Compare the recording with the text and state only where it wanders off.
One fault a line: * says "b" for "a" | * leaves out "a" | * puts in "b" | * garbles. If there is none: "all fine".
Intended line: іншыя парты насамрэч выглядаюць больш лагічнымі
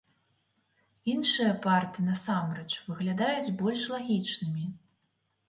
all fine